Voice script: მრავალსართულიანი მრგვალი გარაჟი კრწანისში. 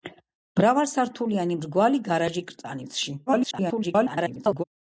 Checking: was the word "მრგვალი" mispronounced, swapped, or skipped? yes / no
no